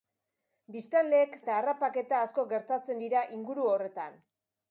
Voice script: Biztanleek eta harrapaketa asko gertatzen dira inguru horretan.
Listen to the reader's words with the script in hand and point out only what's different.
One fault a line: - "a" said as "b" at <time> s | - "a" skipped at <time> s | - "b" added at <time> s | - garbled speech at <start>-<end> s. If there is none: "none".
none